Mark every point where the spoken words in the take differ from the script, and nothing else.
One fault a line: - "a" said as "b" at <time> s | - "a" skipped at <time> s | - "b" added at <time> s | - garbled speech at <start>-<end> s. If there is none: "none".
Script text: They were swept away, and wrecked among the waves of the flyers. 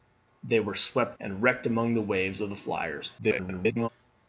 - "away" skipped at 1.2 s
- garbled speech at 3.2-3.9 s